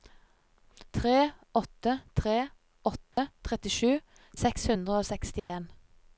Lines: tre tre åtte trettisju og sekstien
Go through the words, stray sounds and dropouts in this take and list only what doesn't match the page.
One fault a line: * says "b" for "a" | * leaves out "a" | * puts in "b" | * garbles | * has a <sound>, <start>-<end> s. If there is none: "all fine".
* puts in "åtte"
* has a dropout, 3.1-3.2 s
* puts in "seks hundre"
* has a dropout, 5.4-5.5 s